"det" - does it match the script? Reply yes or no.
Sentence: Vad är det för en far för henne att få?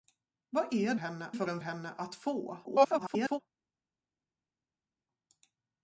no